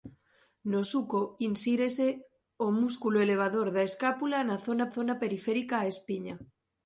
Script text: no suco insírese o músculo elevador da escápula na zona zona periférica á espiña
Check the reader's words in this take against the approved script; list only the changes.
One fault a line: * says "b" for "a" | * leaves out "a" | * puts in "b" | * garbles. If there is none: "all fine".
all fine